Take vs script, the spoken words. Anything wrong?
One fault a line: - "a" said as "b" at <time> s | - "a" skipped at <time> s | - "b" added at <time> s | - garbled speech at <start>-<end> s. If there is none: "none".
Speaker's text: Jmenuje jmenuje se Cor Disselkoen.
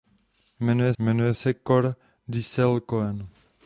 none